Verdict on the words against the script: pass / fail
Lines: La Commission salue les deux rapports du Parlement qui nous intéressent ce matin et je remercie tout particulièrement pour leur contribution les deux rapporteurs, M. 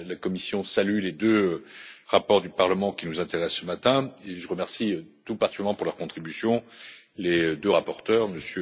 pass